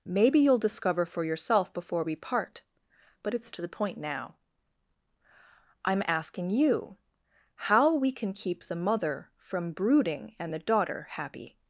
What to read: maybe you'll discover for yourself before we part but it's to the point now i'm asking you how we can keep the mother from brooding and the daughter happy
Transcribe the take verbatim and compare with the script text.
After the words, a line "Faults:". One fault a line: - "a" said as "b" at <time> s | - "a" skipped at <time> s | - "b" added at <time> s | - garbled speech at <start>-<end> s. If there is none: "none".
maybe you'll discover for yourself before we part but it's to the point now i'm asking you how we can keep the mother from brooding and the daughter happy
Faults:
none